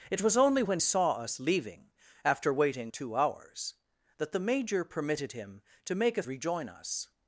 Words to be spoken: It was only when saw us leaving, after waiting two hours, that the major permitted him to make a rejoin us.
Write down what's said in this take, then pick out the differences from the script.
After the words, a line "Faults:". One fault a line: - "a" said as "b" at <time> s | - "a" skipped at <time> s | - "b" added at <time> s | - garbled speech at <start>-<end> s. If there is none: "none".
It was only when saw us leaving, after waiting two hours, that the major permitted him to make a rejoin us.
Faults:
none